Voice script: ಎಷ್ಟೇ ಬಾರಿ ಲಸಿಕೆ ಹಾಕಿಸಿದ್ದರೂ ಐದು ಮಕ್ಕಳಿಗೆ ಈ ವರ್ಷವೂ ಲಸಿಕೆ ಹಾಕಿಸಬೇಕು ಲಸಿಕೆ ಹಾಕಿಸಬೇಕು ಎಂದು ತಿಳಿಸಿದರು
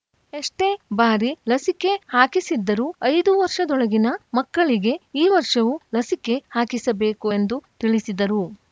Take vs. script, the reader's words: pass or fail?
fail